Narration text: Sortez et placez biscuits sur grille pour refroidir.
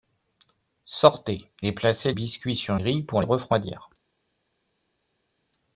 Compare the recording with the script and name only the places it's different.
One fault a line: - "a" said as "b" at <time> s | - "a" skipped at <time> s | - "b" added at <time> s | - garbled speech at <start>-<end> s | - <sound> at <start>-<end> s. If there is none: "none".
none